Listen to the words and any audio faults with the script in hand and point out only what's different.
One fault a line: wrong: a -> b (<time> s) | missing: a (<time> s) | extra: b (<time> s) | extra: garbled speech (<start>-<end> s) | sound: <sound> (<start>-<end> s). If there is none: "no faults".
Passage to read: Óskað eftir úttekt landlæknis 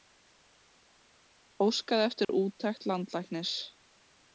sound: dropout (2.2-2.3 s)